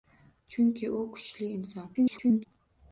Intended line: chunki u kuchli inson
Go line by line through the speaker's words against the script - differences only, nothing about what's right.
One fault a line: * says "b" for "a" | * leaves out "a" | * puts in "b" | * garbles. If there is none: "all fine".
* garbles